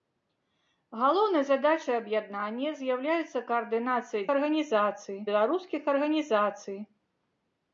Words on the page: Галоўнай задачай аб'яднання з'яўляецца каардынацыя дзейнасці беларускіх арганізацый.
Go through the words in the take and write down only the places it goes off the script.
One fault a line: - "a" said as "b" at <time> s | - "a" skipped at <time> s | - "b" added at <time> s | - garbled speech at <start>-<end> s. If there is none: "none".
- "дзейнасці" said as "арганізацый" at 4.4 s